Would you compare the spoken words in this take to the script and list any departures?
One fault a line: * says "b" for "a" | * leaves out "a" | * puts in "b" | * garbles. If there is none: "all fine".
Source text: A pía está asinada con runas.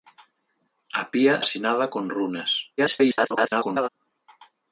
* leaves out "está"
* garbles